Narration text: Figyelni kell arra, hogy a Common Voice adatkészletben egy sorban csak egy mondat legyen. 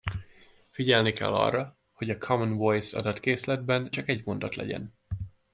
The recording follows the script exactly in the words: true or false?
false